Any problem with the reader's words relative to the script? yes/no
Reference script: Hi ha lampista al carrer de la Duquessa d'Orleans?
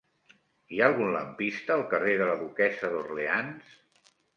yes